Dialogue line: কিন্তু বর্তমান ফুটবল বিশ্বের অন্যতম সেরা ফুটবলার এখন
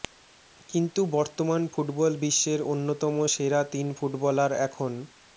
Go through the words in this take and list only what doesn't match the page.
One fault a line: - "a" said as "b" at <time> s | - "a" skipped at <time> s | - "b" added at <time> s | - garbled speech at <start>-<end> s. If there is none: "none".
- "তিন" added at 3.7 s